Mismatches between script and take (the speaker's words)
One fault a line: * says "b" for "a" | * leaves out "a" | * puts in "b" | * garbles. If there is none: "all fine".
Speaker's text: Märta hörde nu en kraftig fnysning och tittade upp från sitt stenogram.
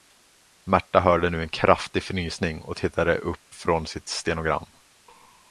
all fine